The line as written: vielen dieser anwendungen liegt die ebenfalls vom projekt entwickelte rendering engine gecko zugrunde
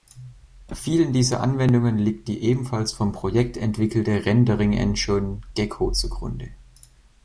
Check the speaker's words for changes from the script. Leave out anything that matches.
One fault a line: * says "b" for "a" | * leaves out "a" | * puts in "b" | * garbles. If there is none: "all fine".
all fine